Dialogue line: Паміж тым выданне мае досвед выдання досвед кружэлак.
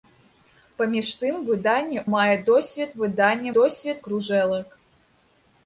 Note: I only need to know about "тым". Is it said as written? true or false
true